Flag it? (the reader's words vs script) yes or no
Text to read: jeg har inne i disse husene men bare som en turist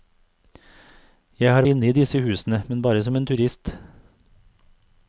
no